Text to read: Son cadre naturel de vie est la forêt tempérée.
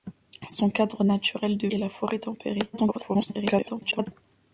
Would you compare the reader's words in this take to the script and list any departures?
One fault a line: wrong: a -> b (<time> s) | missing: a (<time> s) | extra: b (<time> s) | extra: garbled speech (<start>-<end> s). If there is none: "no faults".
missing: vie (1.7 s)
extra: garbled speech (2.7-4.1 s)